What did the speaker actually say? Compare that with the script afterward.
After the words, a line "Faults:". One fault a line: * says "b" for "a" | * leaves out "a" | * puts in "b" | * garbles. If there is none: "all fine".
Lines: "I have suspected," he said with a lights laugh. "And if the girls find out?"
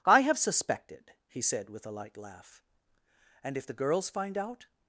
"I have suspected," he said with a light laugh. "And if the girls find out?"
Faults:
* says "light" for "lights"